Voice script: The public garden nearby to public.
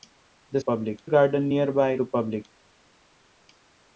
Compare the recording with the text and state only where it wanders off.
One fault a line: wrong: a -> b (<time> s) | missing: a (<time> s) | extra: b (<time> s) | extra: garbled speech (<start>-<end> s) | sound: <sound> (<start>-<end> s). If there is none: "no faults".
no faults